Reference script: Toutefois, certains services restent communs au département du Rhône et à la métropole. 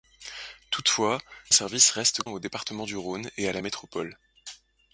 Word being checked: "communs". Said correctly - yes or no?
no